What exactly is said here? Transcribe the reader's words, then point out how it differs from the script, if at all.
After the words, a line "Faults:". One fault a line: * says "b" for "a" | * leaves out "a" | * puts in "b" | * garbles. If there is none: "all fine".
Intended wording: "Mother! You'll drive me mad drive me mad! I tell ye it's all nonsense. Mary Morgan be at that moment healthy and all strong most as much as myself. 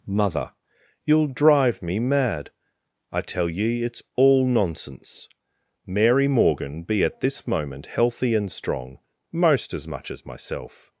"Mother! You'll drive me mad! I tell ye it's all nonsense. Mary Morgan be at this moment healthy and strong most as much as myself.
Faults:
* leaves out "drive me mad"
* says "this" for "that"
* leaves out "all"